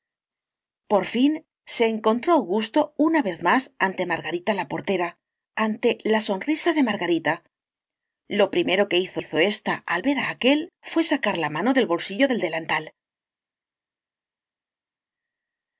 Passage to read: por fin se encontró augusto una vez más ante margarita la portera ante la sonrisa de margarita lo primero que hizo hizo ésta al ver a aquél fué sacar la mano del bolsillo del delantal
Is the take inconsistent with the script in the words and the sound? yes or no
no